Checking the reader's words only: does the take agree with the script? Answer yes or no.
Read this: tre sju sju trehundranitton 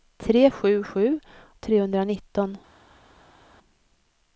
yes